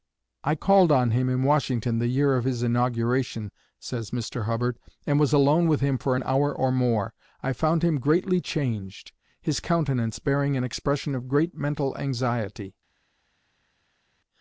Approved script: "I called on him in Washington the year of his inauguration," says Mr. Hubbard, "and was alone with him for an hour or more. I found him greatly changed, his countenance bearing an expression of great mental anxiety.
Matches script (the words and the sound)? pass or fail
pass